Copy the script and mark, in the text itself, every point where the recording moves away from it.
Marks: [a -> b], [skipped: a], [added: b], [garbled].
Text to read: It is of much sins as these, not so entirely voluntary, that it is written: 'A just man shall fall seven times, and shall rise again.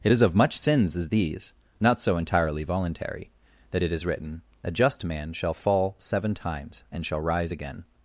It is of much sins as these, not so entirely voluntary, that it is written: 'A just man shall fall seven times, and shall rise again.